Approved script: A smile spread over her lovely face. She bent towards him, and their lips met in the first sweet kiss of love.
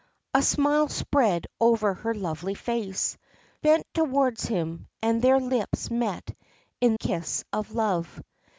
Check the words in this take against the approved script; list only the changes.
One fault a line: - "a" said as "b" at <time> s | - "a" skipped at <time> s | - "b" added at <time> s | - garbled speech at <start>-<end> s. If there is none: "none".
- "She" skipped at 3.2 s
- "the first sweet" skipped at 7.0 s